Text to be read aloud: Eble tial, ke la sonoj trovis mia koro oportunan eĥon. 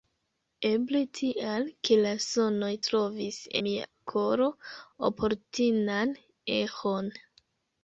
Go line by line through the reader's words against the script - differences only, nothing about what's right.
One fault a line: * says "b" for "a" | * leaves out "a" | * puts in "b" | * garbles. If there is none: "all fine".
all fine